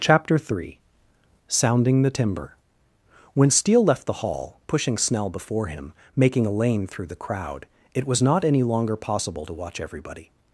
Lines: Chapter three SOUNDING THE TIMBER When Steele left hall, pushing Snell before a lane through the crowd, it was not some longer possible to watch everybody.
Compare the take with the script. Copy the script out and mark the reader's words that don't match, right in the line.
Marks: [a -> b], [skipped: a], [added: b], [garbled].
Chapter three SOUNDING THE TIMBER When Steele left [added: the] hall, pushing Snell before [added: him making] a lane through the crowd, it was not [some -> any] longer possible to watch everybody.